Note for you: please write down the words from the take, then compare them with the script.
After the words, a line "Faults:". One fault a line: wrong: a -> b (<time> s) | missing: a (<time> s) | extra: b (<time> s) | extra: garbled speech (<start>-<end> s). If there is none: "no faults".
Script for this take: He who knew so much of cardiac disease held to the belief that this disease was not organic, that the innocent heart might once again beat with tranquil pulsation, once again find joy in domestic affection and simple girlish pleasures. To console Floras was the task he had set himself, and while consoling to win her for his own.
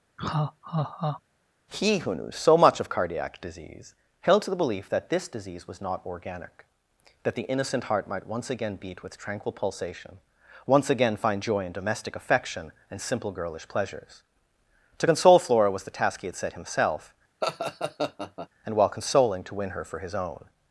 He who knew so much of cardiac disease held to the belief that this disease was not organic, that the innocent heart might once again beat with tranquil pulsation, once again find joy in domestic affection and simple girlish pleasures. To console Flora was the task he had set himself, and while consoling to win her for his own.
Faults:
wrong: Floras -> Flora (15.4 s)